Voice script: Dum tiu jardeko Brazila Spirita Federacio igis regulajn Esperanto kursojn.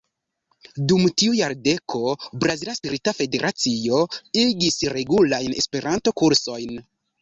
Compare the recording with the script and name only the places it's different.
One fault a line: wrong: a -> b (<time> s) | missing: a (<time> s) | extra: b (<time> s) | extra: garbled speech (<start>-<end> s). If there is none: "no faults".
no faults